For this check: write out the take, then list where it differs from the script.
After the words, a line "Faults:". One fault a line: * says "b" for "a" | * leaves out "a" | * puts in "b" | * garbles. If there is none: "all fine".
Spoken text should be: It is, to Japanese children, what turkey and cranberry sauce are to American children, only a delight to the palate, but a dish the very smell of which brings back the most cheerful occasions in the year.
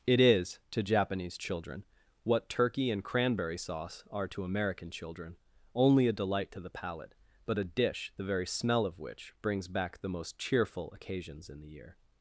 It is, to Japanese children, what turkey and cranberry sauce are to American children, only a delight to the palate, but a dish the very smell of which brings back the most cheerful occasions in the year.
Faults:
all fine